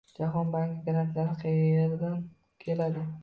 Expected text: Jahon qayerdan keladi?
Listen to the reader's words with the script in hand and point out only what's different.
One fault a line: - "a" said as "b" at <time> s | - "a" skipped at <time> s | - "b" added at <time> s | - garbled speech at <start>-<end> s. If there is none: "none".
- "banki grantlari" added at 0.5 s